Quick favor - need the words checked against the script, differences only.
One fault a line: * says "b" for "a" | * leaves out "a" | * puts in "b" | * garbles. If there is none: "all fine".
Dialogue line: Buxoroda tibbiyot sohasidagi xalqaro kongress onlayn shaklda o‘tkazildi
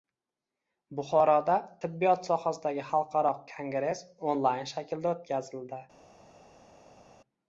all fine